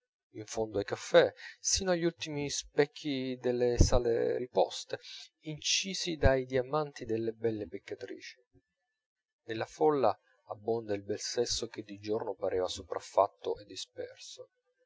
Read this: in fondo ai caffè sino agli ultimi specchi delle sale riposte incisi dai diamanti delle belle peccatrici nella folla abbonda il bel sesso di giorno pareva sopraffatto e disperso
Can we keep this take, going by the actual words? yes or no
no